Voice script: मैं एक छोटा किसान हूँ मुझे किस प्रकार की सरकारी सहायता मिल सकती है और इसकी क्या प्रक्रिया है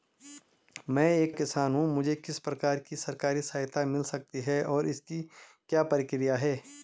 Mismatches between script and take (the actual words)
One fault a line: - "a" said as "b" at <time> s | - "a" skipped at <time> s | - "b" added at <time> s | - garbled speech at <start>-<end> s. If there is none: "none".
- "छोटा" skipped at 1.4 s